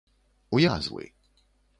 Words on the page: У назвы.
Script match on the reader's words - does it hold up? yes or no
yes